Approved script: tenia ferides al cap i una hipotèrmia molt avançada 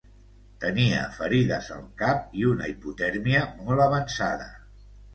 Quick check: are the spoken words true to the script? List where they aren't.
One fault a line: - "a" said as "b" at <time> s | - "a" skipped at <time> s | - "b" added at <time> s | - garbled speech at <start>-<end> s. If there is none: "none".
none